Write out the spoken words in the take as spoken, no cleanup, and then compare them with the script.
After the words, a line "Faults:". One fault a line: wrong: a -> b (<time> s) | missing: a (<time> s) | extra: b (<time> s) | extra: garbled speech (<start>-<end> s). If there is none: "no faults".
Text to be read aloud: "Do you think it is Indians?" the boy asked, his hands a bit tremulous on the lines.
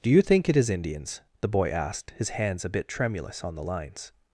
"Do you think it is Indians?" the boy asked, his hands a bit tremulous on the lines.
Faults:
no faults